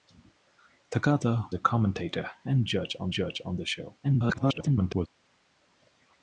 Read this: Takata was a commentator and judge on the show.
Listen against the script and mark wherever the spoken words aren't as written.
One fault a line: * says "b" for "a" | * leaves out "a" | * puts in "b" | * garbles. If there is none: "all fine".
* leaves out "was"
* puts in "judge on"
* garbles